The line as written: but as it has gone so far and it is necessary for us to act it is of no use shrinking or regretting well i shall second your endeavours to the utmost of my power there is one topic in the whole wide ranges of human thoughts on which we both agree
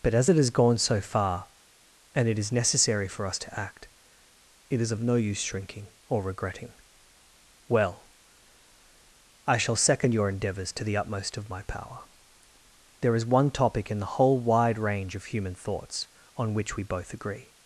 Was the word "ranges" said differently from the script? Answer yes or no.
yes